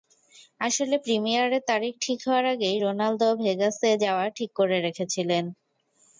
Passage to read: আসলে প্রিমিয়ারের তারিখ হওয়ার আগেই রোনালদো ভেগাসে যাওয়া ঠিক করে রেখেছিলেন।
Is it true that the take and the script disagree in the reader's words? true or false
true